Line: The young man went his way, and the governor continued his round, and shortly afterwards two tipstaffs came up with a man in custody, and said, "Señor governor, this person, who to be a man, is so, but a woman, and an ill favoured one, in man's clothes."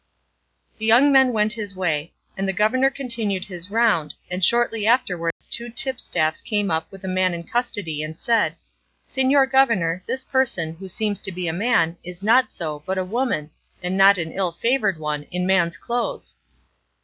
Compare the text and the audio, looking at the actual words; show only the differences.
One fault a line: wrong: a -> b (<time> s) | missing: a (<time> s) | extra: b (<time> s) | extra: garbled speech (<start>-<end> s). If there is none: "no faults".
extra: seems (10.9 s)
extra: not (12.2 s)
extra: not (13.9 s)